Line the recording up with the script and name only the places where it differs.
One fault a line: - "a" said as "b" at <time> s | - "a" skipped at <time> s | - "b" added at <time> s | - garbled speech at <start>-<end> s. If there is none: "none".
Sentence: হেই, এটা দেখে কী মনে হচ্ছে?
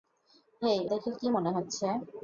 - "এটা" skipped at 0.8 s